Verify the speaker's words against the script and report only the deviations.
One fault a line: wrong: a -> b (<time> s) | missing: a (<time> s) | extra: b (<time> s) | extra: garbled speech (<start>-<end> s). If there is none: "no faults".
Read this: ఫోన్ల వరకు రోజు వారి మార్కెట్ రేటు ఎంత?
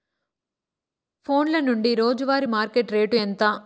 wrong: వరకు -> నుండి (1.6 s)